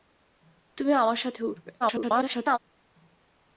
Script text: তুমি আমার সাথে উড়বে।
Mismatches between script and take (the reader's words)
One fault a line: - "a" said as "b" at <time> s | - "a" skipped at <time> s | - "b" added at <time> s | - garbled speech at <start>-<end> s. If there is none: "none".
- garbled speech at 1.8-2.6 s